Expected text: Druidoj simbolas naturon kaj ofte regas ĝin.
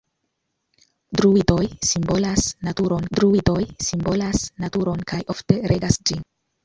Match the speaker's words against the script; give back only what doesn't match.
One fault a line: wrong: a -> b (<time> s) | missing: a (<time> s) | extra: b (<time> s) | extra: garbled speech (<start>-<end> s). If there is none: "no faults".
extra: druidoj simbolas naturon (3.2 s)